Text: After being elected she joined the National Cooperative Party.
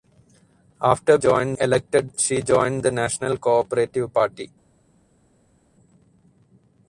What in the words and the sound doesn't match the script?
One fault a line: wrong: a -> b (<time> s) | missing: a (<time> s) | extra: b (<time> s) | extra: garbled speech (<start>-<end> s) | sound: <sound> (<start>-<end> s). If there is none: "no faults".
wrong: being -> joined (1.2 s)